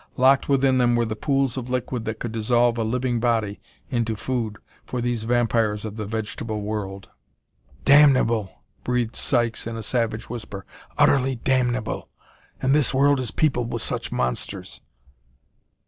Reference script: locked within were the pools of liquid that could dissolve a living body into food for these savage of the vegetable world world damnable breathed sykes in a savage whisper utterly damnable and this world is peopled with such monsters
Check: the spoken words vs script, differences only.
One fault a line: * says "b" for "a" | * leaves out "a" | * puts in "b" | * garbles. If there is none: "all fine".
* puts in "them"
* says "vampires" for "savage"
* leaves out "world"